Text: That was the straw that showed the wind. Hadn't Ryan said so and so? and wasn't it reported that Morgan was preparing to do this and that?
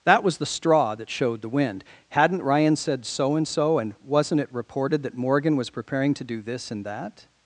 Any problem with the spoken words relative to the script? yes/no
no